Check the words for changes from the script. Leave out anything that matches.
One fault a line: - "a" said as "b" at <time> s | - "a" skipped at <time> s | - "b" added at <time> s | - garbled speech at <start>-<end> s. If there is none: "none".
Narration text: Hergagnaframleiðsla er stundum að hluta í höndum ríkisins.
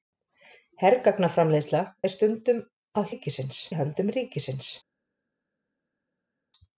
- "hluta" said as "ríkisins" at 3.1 s